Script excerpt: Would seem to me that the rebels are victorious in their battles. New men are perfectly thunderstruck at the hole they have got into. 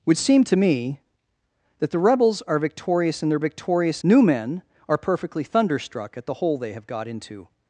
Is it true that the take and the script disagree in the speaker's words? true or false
true